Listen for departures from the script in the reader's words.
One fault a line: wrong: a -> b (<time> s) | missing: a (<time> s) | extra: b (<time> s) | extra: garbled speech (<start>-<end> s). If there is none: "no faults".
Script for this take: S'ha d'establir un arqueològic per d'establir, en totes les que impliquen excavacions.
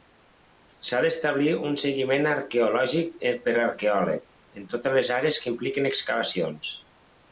extra: seguiment (1.8 s)
wrong: d'establir -> arqueòleg (3.7 s)
extra: àrees (5.2 s)